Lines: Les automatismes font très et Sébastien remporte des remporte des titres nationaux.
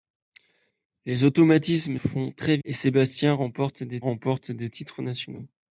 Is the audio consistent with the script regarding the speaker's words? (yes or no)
yes